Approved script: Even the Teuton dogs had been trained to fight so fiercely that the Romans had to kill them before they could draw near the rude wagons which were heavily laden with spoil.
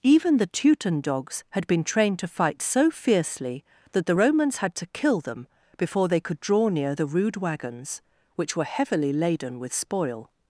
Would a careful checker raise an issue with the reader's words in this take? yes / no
no